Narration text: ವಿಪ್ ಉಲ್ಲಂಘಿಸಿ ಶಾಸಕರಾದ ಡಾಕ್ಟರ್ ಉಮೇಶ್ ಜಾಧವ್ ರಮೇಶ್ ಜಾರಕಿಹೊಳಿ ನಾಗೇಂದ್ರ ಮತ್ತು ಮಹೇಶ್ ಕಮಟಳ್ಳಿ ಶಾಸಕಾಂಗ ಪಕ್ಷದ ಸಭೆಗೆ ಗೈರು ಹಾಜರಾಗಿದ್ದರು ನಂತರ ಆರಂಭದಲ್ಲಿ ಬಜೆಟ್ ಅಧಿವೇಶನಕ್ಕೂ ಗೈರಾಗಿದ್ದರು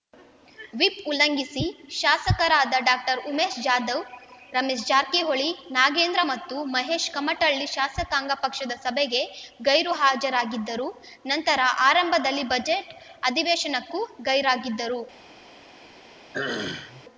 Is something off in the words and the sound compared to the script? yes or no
yes